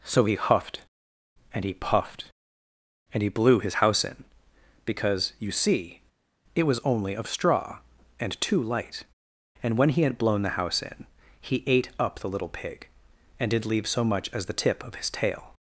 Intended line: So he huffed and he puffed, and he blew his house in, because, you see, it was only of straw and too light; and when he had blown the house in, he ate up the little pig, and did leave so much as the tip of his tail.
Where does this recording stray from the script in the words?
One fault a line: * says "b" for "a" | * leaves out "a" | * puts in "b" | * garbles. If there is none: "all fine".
all fine